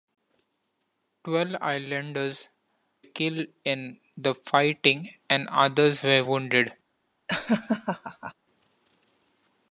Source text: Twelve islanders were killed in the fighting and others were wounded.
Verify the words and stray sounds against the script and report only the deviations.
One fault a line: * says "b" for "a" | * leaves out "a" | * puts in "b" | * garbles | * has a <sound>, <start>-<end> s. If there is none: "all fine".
* leaves out "were"
* has a laugh, 7.3-8.3 s